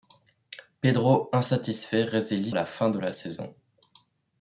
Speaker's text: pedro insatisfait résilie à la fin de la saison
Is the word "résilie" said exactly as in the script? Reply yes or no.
yes